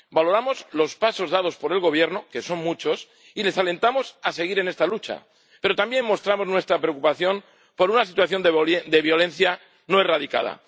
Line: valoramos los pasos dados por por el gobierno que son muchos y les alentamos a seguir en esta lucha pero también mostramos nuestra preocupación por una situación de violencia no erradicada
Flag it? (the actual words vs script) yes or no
yes